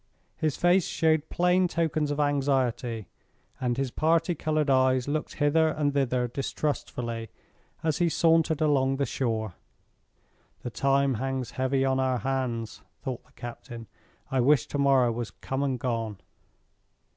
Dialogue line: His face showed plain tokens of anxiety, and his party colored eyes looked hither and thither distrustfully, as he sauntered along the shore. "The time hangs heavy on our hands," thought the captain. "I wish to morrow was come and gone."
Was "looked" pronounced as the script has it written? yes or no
yes